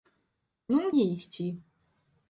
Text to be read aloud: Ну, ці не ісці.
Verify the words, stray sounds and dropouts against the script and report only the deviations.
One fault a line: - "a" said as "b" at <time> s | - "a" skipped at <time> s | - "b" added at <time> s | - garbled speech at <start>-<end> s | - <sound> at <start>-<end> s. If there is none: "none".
- "ці" skipped at 0.9 s